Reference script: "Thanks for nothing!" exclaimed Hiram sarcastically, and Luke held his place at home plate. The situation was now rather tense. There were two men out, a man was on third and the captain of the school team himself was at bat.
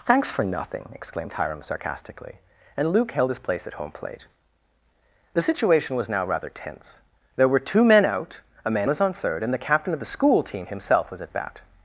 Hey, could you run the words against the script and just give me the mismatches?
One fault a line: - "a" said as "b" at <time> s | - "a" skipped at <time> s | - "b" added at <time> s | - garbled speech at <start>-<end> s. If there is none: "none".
none